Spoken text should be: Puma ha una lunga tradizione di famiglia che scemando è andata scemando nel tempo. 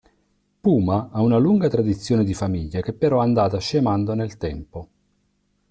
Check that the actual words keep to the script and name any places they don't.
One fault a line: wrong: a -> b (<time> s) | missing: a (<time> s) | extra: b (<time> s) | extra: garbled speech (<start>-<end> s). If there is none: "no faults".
wrong: scemando -> però (2.9 s)